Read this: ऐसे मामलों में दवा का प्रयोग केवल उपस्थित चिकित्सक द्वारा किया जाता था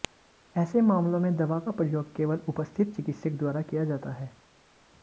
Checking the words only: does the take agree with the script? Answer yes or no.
no